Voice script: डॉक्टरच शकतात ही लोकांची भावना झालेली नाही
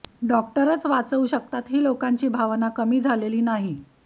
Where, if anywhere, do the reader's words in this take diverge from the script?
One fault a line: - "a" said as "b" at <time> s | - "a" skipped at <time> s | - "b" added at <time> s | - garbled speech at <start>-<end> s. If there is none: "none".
- "वाचवू" added at 0.8 s
- "कमी" added at 2.7 s